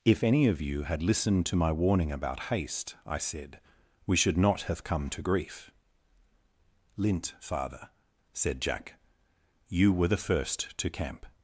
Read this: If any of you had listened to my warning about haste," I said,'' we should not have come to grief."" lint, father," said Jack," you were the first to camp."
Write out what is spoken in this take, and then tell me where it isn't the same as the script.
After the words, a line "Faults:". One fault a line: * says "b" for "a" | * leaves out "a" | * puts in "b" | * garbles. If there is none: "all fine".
If any of you had listened to my warning about haste," I said,'' we should not have come to grief."" lint, father," said Jack," you were the first to camp."
Faults:
all fine